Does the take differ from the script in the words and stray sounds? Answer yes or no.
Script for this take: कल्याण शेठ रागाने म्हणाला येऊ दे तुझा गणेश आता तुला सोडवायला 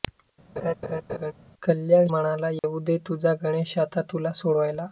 yes